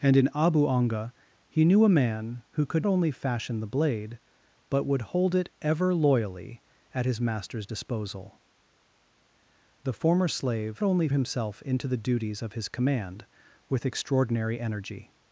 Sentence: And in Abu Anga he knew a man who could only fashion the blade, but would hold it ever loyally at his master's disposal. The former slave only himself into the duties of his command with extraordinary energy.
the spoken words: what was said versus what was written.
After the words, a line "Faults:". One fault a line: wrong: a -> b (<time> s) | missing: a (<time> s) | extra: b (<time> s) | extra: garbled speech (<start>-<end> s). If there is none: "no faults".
And in Abu Anga he knew a man who could only fashion the blade, but would hold it ever loyally at his master's disposal. The former slave only himself into the duties of his command with extraordinary energy.
Faults:
no faults